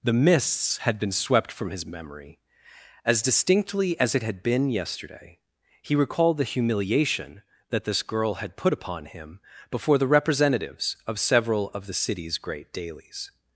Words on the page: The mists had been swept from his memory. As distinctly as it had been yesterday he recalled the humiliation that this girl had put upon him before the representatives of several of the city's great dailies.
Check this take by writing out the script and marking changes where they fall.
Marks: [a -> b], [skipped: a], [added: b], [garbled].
The mists had been swept from his memory. As distinctly as it had been yesterday he recalled the humiliation that this girl had put upon him before the representatives of several of the city's great dailies.